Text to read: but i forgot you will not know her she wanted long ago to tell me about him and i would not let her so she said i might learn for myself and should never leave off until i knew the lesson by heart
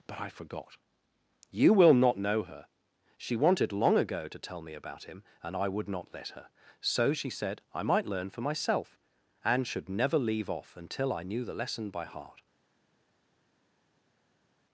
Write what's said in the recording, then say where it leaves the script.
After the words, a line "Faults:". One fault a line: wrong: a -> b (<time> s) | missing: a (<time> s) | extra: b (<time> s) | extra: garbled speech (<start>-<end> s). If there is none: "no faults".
but i forgot you will not know her she wanted long ago to tell me about him and i would not let her so she said i might learn for myself and should never leave off until i knew the lesson by heart
Faults:
no faults